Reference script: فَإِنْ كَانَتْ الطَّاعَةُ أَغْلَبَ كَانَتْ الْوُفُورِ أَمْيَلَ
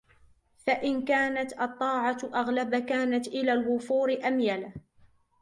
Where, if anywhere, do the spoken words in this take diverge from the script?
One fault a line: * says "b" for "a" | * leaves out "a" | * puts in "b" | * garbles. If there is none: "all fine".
* puts in "إلَى"